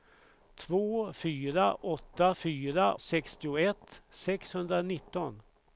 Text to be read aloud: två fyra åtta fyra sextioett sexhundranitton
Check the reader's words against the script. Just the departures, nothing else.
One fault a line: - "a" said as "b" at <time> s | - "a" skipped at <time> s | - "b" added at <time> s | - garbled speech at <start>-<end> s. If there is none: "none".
none